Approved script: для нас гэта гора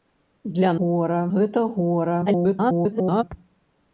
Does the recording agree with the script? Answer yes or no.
no